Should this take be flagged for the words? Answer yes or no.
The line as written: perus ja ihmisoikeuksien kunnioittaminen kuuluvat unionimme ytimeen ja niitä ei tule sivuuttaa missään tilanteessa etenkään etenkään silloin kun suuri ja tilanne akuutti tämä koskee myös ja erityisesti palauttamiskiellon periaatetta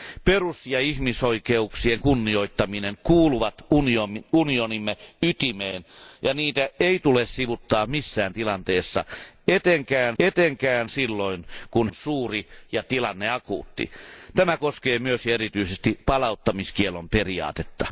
no